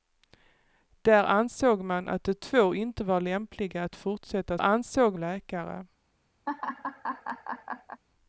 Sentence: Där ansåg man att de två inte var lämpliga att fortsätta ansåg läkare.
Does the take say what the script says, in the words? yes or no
yes